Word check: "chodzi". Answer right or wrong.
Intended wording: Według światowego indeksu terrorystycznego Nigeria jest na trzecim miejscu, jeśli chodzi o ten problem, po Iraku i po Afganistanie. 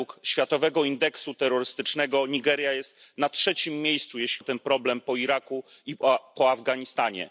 wrong